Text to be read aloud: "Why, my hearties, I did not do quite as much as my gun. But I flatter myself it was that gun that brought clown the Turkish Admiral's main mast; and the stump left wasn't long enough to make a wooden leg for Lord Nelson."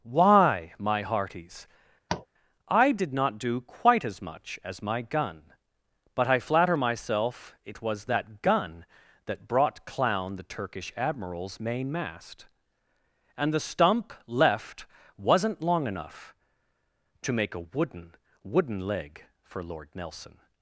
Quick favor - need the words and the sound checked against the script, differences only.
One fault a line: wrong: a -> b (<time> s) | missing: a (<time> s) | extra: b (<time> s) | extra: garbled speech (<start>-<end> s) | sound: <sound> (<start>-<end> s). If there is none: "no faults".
sound: tap (2.1-2.3 s)
extra: wooden (18.4 s)